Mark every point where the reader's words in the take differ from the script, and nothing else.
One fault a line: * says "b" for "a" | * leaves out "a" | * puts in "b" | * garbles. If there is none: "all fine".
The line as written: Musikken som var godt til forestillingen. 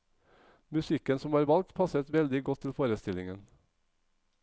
* puts in "valgt passet veldig"